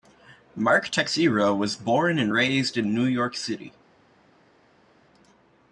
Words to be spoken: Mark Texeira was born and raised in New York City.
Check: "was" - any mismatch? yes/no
no